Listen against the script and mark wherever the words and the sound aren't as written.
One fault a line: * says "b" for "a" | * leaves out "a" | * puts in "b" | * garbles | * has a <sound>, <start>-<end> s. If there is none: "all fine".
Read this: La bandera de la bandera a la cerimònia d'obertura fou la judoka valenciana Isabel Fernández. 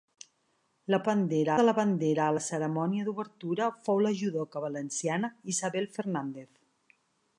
all fine